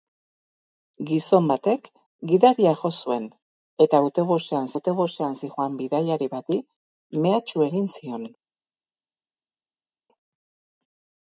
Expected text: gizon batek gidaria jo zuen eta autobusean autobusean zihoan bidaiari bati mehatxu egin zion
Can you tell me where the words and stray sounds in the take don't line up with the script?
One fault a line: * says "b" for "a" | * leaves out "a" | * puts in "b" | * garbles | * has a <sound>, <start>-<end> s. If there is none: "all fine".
all fine